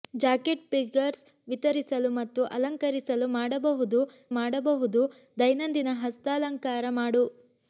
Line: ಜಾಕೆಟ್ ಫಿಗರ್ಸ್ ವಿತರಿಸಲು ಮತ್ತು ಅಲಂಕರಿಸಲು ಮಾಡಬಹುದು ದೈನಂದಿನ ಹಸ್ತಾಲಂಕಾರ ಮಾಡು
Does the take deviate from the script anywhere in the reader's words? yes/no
yes